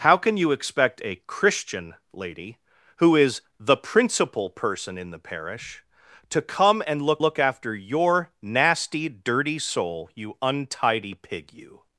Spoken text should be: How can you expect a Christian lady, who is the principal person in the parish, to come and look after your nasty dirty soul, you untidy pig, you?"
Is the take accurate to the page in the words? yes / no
no